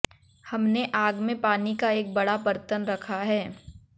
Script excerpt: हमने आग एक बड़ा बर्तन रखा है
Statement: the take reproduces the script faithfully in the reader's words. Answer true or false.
false